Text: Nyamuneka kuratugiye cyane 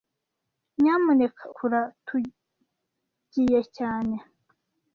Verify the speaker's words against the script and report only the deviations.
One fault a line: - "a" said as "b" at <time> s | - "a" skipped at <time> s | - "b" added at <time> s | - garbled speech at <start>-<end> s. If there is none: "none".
none